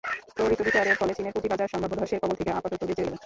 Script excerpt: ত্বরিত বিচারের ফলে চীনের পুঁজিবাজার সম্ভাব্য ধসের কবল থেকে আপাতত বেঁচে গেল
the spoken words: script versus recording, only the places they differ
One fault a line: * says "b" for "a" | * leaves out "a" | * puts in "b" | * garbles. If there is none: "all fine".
all fine